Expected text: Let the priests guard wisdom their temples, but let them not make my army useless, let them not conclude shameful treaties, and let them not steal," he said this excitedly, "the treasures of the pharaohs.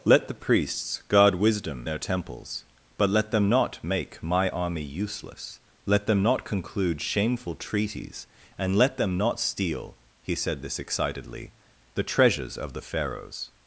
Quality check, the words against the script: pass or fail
pass